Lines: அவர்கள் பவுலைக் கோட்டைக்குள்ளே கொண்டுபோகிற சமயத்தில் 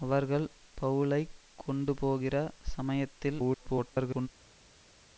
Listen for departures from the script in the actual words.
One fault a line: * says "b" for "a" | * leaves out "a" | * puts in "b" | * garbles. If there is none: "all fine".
* leaves out "கோட்டைக்குள்ளே"
* garbles